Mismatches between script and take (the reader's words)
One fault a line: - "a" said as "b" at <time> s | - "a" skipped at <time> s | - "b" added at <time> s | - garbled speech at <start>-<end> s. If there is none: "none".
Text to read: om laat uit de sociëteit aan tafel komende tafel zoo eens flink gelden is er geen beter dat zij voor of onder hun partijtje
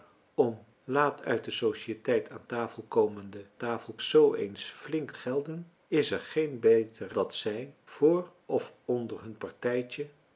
none